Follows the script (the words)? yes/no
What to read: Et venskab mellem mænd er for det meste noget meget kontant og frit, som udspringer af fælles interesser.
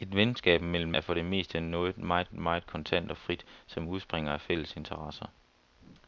no